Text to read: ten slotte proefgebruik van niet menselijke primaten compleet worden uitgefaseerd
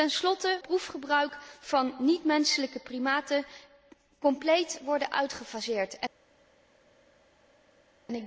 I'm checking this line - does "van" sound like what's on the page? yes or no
yes